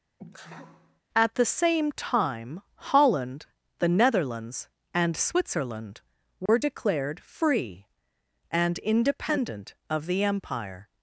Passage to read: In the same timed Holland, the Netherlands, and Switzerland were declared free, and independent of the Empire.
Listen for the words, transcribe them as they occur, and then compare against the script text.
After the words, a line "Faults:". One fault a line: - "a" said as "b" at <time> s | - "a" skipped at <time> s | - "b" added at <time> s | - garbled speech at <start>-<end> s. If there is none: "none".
At the same time Holland, the Netherlands, and Switzerland were declared free, and independent of the Empire.
Faults:
- "In" said as "At" at 1.1 s
- "timed" said as "time" at 1.9 s